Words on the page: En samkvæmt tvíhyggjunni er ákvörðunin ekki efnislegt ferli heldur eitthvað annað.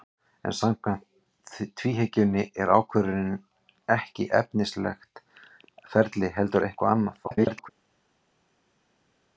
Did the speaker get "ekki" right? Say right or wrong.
right